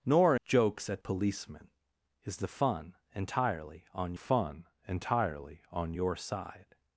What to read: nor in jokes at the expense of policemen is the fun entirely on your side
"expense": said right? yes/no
no